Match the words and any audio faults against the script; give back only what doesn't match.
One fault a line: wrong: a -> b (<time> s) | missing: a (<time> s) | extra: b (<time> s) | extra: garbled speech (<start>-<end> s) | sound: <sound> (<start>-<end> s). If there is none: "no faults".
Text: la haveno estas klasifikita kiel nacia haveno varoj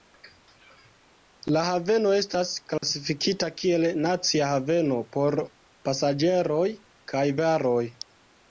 sound: dropout (2.8-2.8 s)
extra: por pasaĝeroj kaj (5.2 s)